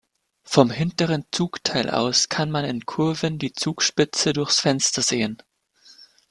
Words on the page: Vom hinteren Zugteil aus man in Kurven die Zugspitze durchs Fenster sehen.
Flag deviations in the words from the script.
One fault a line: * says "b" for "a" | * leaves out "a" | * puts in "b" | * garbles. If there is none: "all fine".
* puts in "kann"